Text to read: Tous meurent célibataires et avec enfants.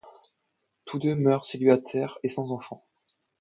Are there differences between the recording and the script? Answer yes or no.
yes